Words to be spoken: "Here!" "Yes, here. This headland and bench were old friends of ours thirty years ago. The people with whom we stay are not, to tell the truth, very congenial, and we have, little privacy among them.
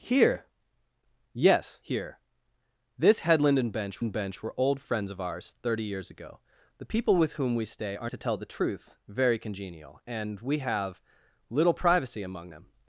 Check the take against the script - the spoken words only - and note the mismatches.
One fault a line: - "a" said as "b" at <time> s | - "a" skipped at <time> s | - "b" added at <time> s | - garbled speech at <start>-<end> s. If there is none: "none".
- "and bench" added at 4.0 s
- "not" skipped at 8.1 s